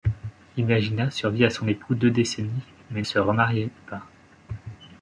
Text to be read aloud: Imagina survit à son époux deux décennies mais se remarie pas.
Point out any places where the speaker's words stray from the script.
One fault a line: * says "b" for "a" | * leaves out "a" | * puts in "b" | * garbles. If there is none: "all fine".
all fine